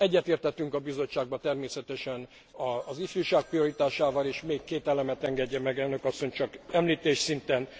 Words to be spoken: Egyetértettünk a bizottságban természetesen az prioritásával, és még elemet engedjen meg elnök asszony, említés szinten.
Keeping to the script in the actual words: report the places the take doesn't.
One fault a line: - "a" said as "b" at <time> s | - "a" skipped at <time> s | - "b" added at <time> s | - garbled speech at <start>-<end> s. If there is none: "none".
- "ifjúság" added at 3.0 s
- "két" added at 4.6 s
- "csak" added at 6.3 s